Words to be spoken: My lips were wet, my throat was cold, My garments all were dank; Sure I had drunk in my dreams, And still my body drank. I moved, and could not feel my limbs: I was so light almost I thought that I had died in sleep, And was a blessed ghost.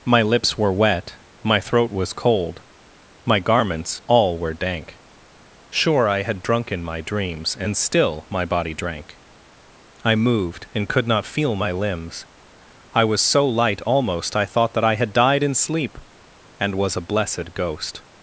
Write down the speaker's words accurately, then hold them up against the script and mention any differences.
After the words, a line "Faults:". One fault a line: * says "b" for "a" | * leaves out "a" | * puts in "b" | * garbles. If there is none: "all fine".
My lips were wet, my throat was cold, My garments all were dank; Sure I had drunk in my dreams, And still my body drank. I moved, and could not feel my limbs: I was so light almost I thought that I had died in sleep, And was a blessed ghost.
Faults:
all fine